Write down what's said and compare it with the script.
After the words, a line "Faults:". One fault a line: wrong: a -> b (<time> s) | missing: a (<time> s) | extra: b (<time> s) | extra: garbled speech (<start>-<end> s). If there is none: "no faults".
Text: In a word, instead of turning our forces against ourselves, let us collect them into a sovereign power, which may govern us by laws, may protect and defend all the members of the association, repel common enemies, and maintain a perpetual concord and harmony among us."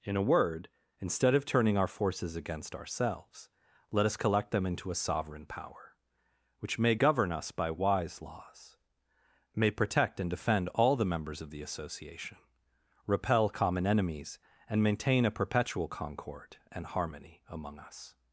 In a word, instead of turning our forces against ourselves, let us collect them into a sovereign power, which may govern us by wise laws, may protect and defend all the members of the association, repel common enemies, and maintain a perpetual concord and harmony among us."
Faults:
extra: wise (7.7 s)